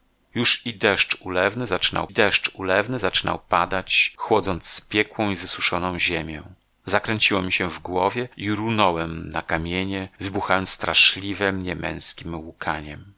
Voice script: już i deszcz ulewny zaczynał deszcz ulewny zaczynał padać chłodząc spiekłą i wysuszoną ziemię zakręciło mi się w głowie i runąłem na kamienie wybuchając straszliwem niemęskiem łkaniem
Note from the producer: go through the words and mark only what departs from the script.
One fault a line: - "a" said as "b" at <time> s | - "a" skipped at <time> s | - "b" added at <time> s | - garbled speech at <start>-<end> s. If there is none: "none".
none